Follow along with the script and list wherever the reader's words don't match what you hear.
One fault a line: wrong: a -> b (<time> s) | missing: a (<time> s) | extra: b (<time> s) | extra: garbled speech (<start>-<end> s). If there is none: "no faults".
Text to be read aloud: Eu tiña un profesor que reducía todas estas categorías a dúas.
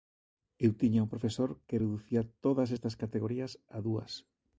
no faults